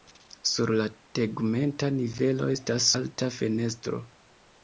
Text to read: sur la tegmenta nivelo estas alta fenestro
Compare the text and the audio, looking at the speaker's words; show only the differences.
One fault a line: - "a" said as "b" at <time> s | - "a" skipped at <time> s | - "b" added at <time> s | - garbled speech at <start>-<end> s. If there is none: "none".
none